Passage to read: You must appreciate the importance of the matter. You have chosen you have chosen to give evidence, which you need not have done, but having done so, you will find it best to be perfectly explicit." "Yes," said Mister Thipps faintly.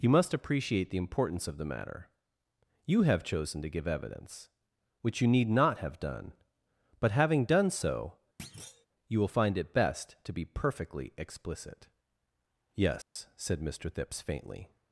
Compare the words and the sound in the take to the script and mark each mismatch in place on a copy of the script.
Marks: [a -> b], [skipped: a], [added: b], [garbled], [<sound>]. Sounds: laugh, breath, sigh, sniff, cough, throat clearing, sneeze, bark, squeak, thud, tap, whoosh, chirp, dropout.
You must appreciate the importance of the matter. You have chosen [skipped: you have chosen] to give evidence, which you need not have done, but having done so, [thud] you will find it best to be perfectly explicit." "Yes," [dropout] said Mister Thipps faintly.